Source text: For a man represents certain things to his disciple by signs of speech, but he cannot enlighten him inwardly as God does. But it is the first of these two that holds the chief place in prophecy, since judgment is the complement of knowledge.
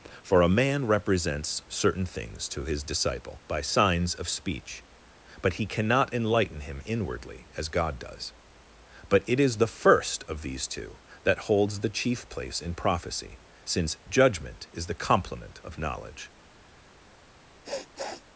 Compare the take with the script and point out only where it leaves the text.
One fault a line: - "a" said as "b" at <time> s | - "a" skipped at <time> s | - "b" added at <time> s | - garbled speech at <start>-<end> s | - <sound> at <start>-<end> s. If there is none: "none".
- sniff at 17.6-18.2 s